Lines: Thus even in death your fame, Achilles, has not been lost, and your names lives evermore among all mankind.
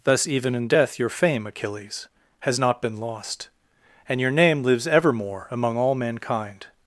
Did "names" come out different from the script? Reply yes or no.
yes